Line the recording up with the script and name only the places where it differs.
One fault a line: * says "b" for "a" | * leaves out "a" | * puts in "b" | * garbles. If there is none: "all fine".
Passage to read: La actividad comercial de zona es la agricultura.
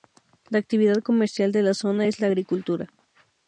* puts in "la"